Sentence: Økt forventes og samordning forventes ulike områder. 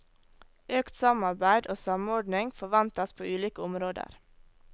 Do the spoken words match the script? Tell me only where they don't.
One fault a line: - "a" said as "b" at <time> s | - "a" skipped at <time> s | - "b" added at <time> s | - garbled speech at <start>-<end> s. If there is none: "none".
- "forventes" said as "samarbeid" at 1.0 s
- "på" added at 3.1 s